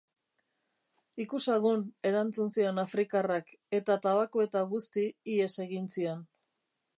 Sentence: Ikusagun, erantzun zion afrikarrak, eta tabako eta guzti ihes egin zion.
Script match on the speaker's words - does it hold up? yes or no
yes